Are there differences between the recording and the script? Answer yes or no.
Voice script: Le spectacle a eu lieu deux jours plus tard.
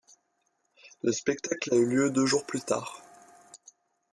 no